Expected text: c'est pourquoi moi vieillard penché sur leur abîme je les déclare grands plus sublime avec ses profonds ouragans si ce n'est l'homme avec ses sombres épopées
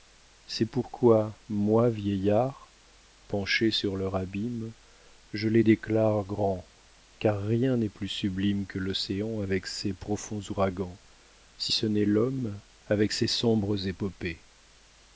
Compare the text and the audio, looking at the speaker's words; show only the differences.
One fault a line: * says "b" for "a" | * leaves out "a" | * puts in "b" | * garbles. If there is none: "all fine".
* puts in "car rien n'est"
* puts in "que l'océan"